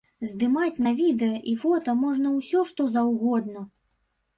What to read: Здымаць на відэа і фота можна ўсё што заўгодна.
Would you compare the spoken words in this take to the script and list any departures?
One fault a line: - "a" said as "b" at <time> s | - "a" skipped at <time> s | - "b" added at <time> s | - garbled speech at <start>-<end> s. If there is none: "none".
none